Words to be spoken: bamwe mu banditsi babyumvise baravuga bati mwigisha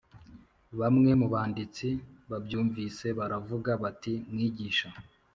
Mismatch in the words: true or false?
false